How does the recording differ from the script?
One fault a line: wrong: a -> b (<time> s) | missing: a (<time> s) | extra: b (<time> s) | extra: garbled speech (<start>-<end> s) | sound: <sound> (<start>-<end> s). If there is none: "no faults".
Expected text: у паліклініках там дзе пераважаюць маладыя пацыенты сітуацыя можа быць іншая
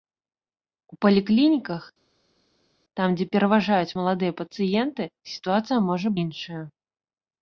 missing: быць (6.1 s)